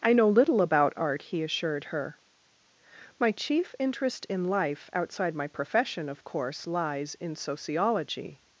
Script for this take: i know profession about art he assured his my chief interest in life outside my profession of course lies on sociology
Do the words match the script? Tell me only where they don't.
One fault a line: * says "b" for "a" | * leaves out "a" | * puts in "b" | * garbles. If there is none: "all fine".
* says "little" for "profession"
* says "her" for "his"
* says "in" for "on"